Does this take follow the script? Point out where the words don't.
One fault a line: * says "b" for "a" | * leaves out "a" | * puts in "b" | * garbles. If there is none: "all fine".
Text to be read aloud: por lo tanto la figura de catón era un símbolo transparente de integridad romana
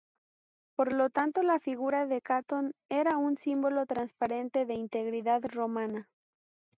all fine